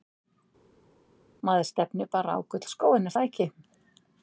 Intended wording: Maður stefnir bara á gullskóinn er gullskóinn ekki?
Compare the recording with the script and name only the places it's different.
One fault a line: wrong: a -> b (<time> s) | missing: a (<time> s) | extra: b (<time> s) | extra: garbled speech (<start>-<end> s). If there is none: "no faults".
wrong: gullskóinn -> það (3.1 s)